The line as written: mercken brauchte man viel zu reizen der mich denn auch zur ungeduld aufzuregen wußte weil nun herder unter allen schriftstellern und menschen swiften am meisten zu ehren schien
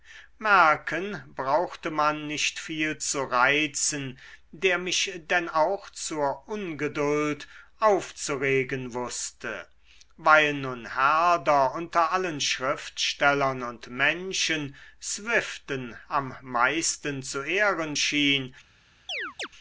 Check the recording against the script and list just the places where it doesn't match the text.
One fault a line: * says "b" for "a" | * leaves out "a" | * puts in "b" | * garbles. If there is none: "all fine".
* puts in "nicht"